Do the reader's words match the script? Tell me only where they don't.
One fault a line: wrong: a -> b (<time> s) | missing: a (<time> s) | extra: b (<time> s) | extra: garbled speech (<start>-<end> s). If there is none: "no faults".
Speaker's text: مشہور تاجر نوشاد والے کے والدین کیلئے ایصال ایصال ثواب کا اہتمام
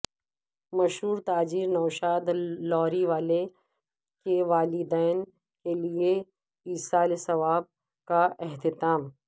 extra: لاری (2.7 s)
missing: ایصال (7.1 s)